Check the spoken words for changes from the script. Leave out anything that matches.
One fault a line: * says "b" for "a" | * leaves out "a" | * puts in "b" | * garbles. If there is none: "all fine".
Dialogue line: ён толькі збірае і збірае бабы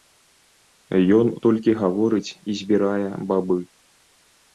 * says "гаворыць" for "збірае"